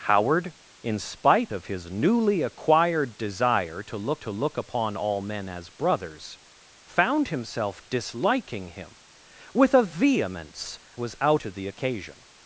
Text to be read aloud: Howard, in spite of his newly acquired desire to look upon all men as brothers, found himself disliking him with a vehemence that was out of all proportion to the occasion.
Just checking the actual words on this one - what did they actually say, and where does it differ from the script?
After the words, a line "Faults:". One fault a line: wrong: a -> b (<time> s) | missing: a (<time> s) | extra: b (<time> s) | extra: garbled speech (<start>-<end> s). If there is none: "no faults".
Howard, in spite of his newly acquired desire to look to look upon all men as brothers, found himself disliking him with a vehemence was out to the occasion.
Faults:
extra: to look (4.2 s)
missing: that (10.8 s)
missing: of all proportion (11.4 s)